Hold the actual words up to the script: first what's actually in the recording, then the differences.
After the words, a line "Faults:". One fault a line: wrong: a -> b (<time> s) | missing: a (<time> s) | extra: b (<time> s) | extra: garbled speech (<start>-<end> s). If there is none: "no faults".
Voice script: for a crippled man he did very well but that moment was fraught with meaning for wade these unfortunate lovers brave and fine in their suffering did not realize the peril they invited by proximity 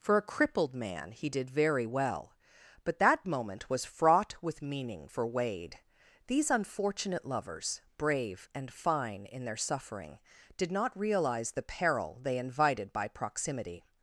for a crippled man he did very well but that moment was fraught with meaning for wade these unfortunate lovers brave and fine in their suffering did not realize the peril they invited by proximity
Faults:
no faults